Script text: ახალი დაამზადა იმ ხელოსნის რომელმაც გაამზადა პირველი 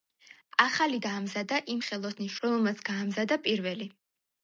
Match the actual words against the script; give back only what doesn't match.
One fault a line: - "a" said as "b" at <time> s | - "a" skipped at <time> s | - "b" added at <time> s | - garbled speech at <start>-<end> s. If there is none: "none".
none